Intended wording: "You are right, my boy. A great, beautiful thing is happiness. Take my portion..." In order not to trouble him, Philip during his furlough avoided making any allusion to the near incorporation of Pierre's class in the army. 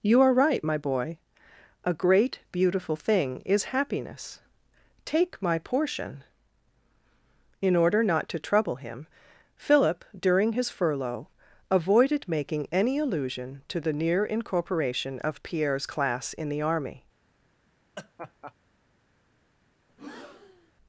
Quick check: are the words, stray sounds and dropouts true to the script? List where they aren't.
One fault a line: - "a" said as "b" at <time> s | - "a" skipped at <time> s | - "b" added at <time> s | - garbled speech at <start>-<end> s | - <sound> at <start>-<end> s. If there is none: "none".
- laugh at 18.0-18.5 s
- breath at 19.9-20.7 s